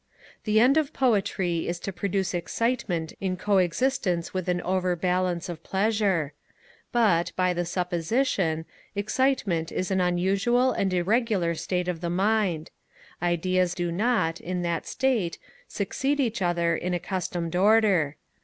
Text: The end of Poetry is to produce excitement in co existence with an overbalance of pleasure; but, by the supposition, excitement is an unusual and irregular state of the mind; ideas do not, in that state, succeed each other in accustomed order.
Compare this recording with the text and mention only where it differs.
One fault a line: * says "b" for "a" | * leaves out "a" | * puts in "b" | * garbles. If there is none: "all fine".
all fine